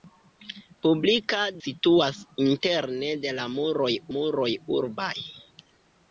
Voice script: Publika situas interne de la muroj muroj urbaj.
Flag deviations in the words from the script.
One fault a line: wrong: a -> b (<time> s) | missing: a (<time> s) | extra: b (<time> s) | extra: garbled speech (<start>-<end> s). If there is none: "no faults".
no faults